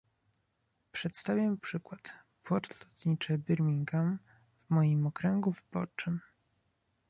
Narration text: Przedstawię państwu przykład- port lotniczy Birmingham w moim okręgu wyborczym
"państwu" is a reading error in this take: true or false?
true